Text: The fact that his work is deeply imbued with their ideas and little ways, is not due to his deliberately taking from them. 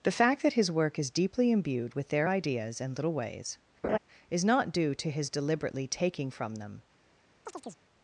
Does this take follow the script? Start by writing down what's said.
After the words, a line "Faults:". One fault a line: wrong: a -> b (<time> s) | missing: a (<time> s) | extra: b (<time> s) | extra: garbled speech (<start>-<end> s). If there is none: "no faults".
The fact that his work is deeply imbued with their ideas and little ways, is not due to his deliberately taking from them.
Faults:
no faults